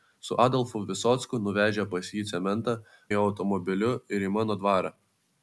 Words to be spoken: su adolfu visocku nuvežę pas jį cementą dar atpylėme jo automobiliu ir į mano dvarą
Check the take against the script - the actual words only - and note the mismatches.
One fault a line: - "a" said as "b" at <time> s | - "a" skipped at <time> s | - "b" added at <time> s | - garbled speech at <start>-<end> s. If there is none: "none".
- "dar atpylėme" skipped at 2.8 s